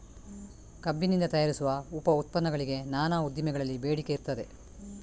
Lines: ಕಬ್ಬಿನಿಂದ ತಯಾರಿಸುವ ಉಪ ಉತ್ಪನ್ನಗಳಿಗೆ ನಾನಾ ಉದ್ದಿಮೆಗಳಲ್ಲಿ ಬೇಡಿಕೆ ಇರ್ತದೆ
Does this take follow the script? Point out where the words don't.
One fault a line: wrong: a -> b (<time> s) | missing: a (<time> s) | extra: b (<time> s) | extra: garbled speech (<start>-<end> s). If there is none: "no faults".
no faults